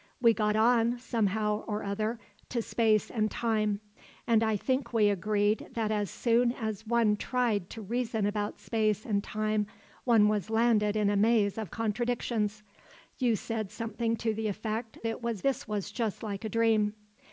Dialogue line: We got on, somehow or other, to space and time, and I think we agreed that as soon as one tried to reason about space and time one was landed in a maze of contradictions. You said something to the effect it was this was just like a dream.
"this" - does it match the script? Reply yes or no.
yes